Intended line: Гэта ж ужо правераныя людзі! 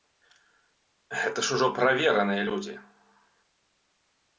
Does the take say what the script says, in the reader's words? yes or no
yes